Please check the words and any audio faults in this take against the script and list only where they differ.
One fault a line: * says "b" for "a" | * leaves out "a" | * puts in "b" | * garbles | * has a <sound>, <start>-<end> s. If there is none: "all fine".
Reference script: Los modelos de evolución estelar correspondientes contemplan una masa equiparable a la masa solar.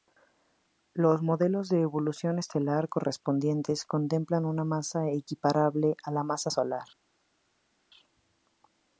all fine